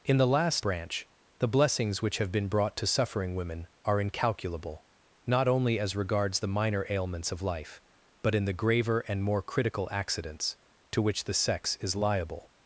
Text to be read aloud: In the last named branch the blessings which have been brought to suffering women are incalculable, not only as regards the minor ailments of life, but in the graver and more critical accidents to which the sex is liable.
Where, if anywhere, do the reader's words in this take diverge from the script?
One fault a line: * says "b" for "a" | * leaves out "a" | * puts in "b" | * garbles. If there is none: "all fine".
* leaves out "named"